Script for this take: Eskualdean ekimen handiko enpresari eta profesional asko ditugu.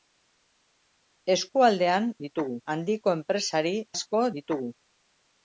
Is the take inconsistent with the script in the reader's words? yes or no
yes